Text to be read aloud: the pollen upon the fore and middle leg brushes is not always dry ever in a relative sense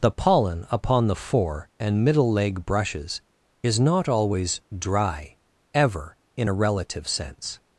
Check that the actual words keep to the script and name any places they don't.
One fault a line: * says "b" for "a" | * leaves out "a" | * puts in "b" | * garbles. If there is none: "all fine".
all fine